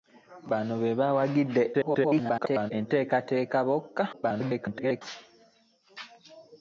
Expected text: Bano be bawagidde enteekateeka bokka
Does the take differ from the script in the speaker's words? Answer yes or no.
yes